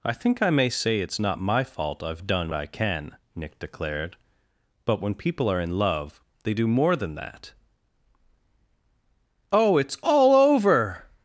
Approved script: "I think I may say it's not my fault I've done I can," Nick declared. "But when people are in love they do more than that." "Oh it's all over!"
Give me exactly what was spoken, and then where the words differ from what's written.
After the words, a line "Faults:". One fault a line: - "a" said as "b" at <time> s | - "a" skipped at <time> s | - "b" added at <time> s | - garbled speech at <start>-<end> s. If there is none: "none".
"I think I may say it's not my fault I've done I can," Nick declared. "But when people are in love they do more than that." "Oh it's all over!"
Faults:
none